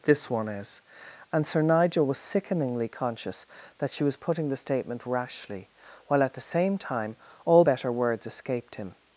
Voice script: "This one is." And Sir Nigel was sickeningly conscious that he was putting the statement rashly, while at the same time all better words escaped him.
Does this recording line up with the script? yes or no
no